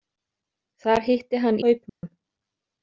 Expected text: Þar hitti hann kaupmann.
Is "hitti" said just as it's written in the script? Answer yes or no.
yes